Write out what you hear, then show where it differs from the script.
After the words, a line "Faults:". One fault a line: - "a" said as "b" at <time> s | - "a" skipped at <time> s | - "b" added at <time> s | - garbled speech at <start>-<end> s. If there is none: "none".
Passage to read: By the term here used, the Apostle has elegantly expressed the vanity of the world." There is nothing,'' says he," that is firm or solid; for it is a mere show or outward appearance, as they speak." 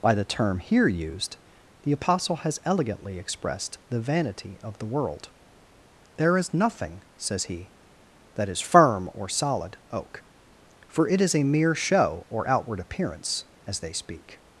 By the term here used, the Apostle has elegantly expressed the vanity of the world." There is nothing,'' says he," that is firm or solid; oak for it is a mere show or outward appearance, as they speak."
Faults:
- "oak" added at 9.9 s